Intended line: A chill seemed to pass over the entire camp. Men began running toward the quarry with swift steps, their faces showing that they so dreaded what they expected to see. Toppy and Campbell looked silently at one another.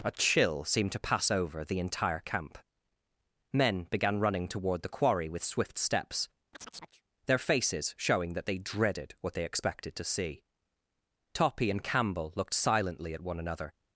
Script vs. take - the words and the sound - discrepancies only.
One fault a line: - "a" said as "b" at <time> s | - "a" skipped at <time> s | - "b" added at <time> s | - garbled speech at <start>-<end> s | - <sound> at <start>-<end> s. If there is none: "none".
- chirp at 6.5-7.0 s
- "so" skipped at 8.6 s